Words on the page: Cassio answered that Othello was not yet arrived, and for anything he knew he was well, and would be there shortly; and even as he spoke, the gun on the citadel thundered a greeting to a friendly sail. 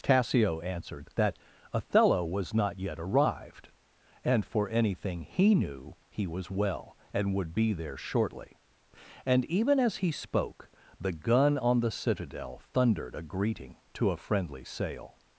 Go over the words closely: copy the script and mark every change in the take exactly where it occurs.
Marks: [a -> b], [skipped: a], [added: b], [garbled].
Cassio answered that Othello was not yet arrived, and for anything he knew he was well, and would be there shortly; and even as he spoke, the gun on the citadel thundered a greeting to a friendly sail.